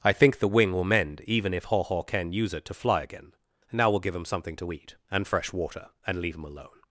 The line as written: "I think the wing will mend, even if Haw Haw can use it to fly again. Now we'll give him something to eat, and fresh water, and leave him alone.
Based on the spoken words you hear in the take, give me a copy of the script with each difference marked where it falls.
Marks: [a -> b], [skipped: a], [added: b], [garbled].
"I think the wing will mend, even if Haw Haw can use it to fly again. Now we'll give him something to eat, and fresh water, and leave him alone.